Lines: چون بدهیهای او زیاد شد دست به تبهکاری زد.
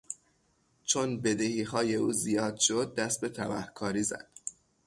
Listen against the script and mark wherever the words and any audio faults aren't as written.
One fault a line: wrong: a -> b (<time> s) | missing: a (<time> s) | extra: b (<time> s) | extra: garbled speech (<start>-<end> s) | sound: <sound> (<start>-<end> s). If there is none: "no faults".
no faults